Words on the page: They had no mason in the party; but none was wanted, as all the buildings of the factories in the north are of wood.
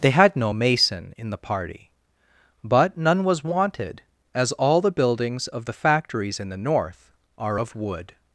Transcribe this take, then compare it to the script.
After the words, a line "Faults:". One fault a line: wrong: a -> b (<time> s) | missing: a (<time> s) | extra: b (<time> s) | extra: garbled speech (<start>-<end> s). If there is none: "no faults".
They had no mason in the party; but none was wanted, as all the buildings of the factories in the north are of wood.
Faults:
no faults